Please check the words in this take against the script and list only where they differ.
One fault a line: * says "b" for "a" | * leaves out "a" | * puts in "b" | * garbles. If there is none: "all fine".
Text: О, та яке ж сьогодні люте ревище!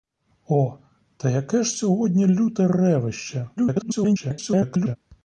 * garbles